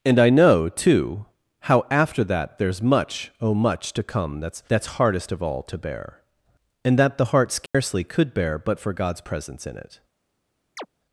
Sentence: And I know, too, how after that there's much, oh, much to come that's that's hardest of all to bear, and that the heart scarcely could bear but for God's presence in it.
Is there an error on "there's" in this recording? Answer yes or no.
no